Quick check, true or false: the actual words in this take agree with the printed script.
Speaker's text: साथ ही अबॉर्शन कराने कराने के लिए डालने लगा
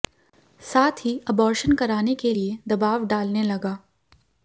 false